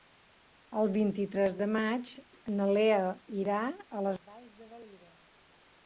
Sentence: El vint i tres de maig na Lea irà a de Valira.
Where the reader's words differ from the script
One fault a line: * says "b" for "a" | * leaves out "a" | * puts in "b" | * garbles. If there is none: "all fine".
* puts in "les Valls"